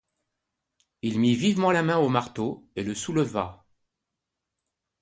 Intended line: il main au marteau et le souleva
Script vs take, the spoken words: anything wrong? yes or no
yes